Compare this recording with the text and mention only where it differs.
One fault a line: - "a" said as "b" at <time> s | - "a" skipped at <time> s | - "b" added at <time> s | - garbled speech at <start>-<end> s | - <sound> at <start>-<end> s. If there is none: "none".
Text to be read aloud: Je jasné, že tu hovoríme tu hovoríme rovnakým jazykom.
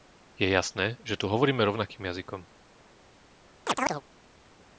- "tu hovoríme" skipped at 1.6 s
- chirp at 3.7-4.0 s